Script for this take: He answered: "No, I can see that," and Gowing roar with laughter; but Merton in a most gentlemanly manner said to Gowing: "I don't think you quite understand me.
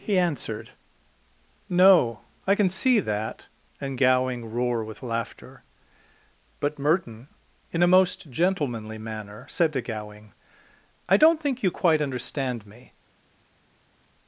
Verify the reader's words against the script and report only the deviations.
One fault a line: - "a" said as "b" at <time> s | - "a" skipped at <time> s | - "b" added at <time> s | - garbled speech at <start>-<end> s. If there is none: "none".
none